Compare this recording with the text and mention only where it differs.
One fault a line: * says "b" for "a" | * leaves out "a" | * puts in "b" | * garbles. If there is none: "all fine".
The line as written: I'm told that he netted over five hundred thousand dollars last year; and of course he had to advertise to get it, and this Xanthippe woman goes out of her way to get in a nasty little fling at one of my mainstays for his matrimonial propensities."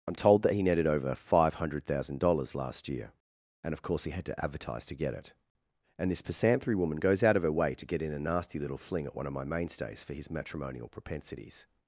* says "Pisanthry" for "Xanthippe"